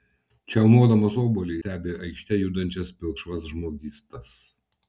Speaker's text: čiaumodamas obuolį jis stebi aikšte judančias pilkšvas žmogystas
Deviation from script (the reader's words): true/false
true